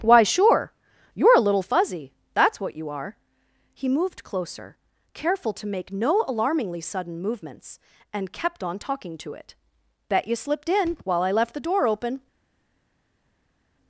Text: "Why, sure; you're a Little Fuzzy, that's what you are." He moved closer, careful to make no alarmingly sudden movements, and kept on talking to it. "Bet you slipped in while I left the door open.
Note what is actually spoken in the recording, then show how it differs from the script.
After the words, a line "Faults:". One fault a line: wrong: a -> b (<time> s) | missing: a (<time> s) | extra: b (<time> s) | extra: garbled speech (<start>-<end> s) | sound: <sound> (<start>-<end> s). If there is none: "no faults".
"Why, sure; you're a Little Fuzzy, that's what you are." He moved closer, careful to make no alarmingly sudden movements, and kept on talking to it. "Bet you slipped in while I left the door open.
Faults:
no faults